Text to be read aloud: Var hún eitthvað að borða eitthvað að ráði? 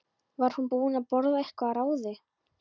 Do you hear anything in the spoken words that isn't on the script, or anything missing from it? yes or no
yes